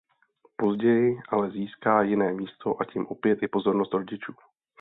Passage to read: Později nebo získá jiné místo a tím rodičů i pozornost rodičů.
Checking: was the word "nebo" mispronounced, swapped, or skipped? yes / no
yes